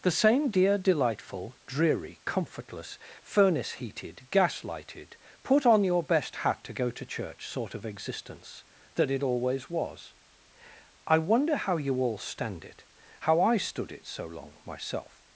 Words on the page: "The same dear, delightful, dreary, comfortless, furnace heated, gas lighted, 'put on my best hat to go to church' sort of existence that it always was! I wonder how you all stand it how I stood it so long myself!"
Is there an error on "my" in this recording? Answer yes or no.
yes